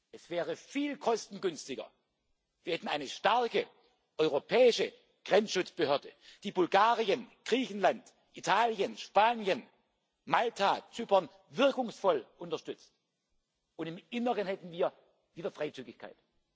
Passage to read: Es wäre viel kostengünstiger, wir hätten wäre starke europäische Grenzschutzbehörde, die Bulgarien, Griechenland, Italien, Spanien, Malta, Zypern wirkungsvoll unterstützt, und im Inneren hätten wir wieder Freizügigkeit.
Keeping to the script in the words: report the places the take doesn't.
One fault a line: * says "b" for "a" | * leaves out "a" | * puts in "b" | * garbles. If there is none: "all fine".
* says "eine" for "wäre"